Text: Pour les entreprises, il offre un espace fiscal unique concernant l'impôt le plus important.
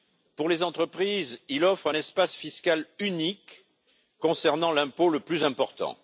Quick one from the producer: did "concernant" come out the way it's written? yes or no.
yes